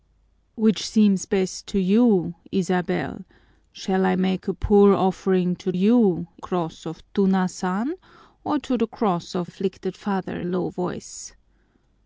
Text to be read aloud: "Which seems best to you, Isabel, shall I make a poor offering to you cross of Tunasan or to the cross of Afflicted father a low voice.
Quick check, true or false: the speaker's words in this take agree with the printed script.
true